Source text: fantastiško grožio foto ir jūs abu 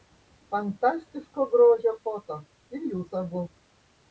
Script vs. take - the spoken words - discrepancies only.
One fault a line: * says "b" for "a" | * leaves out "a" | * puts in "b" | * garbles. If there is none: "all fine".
all fine